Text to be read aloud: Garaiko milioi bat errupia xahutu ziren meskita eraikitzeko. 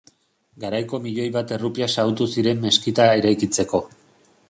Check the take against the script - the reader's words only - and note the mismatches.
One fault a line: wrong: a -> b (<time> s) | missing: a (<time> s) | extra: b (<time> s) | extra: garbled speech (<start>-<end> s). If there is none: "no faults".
no faults